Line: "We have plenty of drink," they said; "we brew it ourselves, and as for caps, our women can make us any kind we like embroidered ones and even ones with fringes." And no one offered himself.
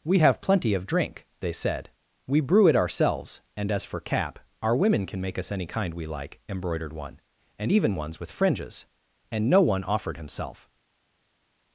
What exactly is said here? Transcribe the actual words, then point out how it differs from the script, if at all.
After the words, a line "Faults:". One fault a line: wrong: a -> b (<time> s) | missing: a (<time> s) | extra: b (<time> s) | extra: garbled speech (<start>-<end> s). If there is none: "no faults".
"We have plenty of drink," they said; "we brew it ourselves, and as for cap, our women can make us any kind we like embroidered one and even ones with fringes." And no one offered himself.
Faults:
wrong: caps -> cap (4.0 s)
wrong: ones -> one (6.9 s)